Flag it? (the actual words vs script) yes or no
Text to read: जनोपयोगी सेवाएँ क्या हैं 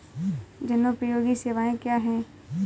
no